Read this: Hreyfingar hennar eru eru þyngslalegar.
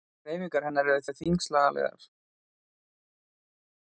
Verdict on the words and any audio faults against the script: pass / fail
pass